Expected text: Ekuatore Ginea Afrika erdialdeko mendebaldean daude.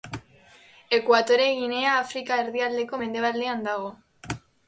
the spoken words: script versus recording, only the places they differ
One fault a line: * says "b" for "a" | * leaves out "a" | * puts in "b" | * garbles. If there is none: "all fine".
* says "dago" for "daude"